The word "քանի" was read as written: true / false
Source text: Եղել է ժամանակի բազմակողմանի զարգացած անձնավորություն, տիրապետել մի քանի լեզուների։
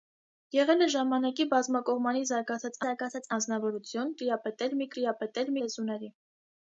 false